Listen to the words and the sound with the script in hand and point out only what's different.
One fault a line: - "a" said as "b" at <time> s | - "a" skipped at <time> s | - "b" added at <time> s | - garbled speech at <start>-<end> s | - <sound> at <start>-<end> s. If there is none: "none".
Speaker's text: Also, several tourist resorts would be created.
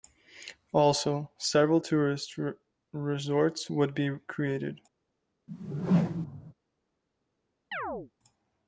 - whoosh at 5.5-6.5 s
- chirp at 7.7-8.1 s